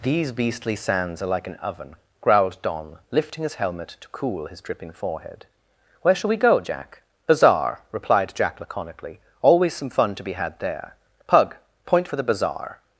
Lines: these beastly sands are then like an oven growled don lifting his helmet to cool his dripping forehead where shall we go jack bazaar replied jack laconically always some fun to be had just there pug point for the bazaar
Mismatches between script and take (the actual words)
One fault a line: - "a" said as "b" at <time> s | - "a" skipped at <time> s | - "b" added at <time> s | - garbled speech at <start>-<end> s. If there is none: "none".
- "then" skipped at 1.3 s
- "just" skipped at 10.6 s